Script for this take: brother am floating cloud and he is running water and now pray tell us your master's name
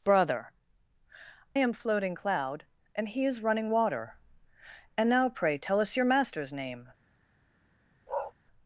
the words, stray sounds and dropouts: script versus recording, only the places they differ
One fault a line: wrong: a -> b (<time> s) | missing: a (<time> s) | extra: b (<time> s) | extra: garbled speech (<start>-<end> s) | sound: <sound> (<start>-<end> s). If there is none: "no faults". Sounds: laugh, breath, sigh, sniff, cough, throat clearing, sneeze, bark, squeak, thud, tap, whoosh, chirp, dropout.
sound: bark (8.1-8.3 s)